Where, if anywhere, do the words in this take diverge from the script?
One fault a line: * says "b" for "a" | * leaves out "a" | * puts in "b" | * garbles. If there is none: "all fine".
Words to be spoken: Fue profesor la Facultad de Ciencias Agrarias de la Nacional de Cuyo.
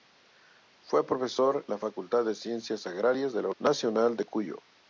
all fine